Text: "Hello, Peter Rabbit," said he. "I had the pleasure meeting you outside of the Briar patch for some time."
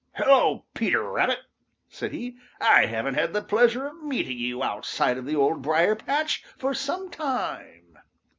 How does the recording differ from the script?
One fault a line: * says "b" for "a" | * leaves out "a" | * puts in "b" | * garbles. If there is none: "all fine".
* puts in "haven't"
* puts in "of"
* puts in "Old"